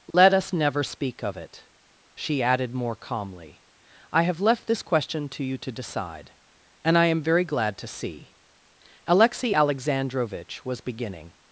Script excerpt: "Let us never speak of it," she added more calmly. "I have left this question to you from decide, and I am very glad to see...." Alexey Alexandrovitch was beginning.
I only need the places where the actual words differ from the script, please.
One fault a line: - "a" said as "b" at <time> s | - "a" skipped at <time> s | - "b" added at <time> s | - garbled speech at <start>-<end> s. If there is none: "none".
- "from" said as "to" at 5.6 s